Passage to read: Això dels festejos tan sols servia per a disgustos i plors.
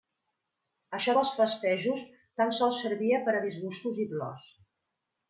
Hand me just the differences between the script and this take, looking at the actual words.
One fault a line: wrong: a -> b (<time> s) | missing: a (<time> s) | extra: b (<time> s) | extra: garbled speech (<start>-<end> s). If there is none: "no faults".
no faults